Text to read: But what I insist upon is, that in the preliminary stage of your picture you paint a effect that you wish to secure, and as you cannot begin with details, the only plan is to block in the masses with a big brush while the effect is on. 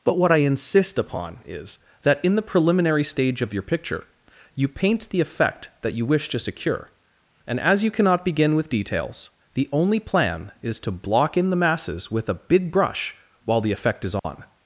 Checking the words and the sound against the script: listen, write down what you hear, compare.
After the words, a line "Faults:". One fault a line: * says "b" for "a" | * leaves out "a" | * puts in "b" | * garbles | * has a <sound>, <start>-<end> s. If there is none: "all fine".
But what I insist upon is, that in the preliminary stage of your picture you paint the effect that you wish to secure, and as you cannot begin with details, the only plan is to block in the masses with a big brush while the effect is on.
Faults:
* says "the" for "a"
* has a dropout, 14.2-14.2 s